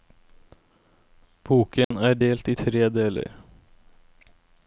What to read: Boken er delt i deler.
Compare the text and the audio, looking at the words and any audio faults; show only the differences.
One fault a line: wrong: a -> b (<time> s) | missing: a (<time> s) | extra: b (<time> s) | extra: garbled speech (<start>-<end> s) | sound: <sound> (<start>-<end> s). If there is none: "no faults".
sound: dropout (1.8-1.9 s)
extra: tre (2.5 s)